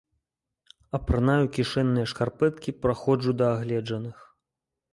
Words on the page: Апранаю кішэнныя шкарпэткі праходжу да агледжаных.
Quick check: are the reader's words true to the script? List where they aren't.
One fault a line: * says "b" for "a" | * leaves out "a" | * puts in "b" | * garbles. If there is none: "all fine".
all fine